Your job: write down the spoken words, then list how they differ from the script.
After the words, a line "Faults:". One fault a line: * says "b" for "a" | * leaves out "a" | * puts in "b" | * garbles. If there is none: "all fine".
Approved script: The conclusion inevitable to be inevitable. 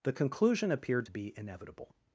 The conclusion appeared to be inevitable.
Faults:
* says "appeared" for "inevitable"